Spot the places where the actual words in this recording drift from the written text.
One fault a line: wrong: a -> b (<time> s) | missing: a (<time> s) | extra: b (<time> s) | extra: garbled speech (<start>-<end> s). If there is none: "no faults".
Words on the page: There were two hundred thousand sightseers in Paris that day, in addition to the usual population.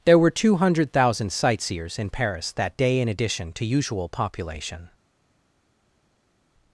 missing: the (3.6 s)